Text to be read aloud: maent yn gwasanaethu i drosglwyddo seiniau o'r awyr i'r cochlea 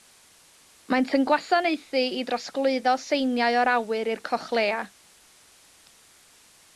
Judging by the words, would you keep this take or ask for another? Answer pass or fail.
pass